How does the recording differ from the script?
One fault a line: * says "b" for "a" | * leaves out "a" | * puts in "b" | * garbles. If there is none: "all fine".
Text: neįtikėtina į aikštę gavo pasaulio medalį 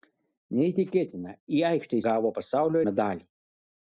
all fine